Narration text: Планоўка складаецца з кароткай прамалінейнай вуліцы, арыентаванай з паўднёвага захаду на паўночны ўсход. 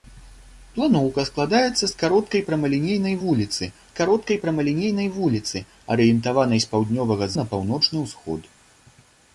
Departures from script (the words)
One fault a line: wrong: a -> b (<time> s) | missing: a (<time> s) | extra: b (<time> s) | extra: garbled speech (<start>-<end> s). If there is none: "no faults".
extra: кароткай прамалінейнай вуліцы (4.0 s)
missing: захаду (7.3 s)